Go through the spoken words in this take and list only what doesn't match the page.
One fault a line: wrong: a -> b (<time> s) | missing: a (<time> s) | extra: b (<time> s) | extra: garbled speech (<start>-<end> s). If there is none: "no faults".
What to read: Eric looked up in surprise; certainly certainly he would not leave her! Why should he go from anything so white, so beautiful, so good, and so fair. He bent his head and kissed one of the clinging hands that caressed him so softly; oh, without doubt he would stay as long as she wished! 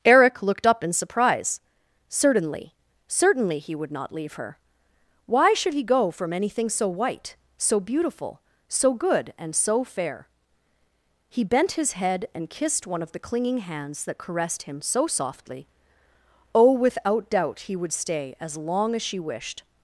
no faults